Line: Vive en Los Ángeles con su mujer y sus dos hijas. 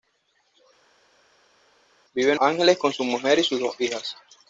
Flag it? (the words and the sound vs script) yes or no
yes